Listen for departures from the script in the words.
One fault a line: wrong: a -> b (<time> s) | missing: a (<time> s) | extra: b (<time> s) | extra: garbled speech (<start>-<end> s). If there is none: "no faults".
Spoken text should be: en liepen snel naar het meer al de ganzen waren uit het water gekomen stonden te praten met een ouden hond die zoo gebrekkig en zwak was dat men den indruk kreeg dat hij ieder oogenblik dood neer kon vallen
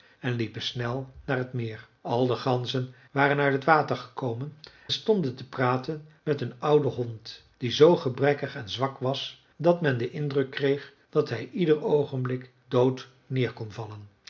no faults